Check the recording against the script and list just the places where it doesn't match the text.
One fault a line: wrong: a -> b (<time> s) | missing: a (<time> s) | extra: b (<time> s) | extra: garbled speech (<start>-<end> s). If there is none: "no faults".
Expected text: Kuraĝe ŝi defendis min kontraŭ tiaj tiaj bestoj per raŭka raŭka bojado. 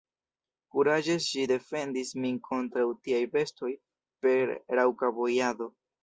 missing: tiaj (3.2 s)
missing: raŭka (5.1 s)